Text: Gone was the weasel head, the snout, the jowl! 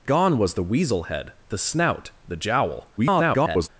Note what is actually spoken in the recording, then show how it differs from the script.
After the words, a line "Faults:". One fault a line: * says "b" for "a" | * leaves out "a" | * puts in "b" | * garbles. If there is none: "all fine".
Gone was the weasel head, the snout, the jowl! [garbled]
Faults:
* garbles